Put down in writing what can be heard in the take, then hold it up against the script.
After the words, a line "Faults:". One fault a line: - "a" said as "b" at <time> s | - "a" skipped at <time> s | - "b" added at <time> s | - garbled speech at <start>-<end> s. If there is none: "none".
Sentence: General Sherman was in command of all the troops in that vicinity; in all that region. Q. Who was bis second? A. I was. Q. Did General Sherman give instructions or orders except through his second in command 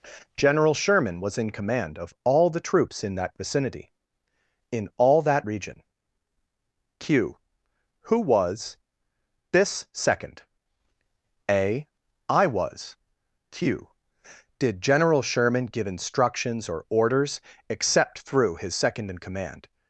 General Sherman was in command of all the troops in that vicinity; in all that region. Q. Who was this second? A. I was. Q. Did General Sherman give instructions or orders except through his second in command
Faults:
- "bis" said as "this" at 9.5 s